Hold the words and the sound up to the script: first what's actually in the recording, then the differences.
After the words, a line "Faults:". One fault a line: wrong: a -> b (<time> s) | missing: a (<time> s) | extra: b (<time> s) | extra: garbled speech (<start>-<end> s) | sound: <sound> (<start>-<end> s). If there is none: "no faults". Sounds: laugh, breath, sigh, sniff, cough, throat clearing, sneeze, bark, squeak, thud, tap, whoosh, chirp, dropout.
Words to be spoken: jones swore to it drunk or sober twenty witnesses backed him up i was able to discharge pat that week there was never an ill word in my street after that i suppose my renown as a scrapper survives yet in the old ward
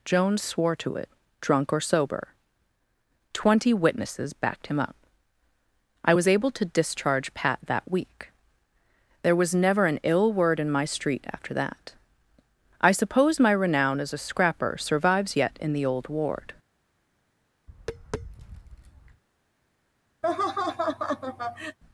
jones swore to it drunk or sober twenty witnesses backed him up i was able to discharge pat that week there was never an ill word in my street after that i suppose my renown as a scrapper survives yet in the old ward
Faults:
sound: tap (17.7-19.2 s)
sound: laugh (20.2-21.8 s)